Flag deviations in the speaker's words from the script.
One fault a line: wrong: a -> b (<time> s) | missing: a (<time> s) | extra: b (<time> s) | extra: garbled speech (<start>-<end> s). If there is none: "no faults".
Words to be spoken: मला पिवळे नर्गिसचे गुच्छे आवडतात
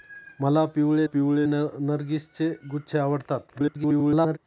extra: पिवळे (1.0 s)
extra: garbled speech (3.5-4.4 s)